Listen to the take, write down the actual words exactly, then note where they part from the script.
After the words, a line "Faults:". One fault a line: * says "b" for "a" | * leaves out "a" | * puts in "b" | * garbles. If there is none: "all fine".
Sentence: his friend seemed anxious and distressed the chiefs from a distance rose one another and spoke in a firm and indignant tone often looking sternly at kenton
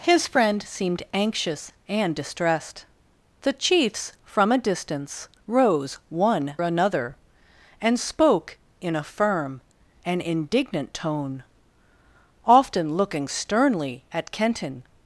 his friend seemed anxious and distressed the chiefs from a distance rose one another and spoke in a firm and indignant tone often looking sternly at kenton
Faults:
all fine